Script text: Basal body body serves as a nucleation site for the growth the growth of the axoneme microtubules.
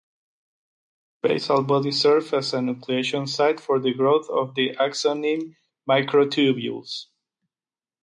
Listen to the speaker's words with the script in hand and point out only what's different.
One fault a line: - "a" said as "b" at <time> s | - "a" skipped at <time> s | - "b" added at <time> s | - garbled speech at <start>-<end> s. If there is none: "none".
- "body" skipped at 1.9 s
- "the growth" skipped at 4.3 s